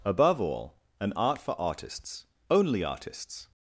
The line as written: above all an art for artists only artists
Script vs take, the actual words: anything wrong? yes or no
no